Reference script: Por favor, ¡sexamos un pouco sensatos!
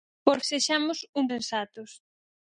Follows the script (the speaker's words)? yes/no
no